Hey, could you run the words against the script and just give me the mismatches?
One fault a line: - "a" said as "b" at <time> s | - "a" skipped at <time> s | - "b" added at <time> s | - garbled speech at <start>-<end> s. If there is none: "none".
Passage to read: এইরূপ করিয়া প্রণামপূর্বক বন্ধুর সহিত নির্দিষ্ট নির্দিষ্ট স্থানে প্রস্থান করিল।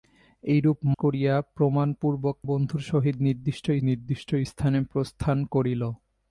none